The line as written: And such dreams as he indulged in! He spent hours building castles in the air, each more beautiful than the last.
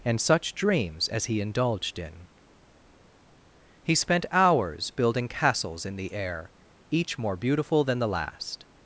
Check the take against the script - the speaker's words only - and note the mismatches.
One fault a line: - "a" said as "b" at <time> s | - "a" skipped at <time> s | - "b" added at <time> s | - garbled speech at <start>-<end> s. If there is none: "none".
none